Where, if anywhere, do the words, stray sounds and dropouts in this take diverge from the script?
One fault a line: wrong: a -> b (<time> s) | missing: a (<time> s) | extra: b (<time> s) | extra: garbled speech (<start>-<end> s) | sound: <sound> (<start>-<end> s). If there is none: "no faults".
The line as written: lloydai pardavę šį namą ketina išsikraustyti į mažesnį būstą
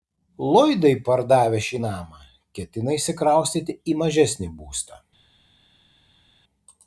no faults